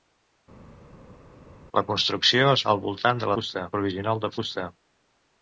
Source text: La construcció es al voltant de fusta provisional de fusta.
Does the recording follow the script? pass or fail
pass